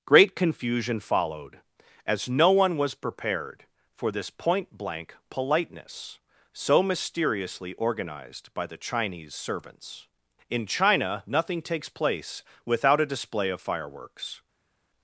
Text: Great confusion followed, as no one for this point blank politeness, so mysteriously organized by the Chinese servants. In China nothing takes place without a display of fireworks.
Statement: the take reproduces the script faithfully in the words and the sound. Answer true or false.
false